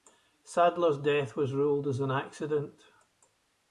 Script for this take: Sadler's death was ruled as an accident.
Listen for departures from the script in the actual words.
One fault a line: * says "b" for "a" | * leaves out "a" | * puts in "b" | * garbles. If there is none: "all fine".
all fine